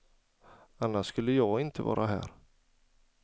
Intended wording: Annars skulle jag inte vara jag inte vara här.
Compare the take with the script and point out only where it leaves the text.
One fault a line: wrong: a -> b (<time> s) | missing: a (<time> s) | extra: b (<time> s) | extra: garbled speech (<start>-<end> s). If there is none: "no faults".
missing: jag inte vara (2.1 s)